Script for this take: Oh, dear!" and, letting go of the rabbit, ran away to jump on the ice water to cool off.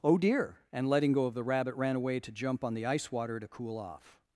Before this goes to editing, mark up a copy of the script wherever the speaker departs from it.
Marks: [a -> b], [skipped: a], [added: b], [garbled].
Oh, dear!" and, letting go of the rabbit, ran away to jump on the ice water to cool off.